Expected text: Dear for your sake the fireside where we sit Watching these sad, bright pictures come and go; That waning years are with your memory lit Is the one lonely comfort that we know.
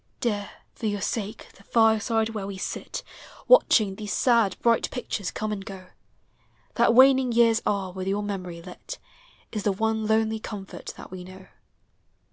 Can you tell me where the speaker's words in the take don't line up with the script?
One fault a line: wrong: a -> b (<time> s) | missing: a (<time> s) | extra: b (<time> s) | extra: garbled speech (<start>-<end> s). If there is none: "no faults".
no faults